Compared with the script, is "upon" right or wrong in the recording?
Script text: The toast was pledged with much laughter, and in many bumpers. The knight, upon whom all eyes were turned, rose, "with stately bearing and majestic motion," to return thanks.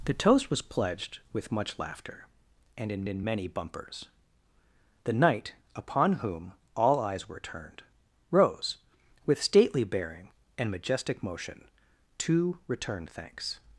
right